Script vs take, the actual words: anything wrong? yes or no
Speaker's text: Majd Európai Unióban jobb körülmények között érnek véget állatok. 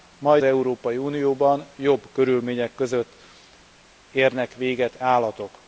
no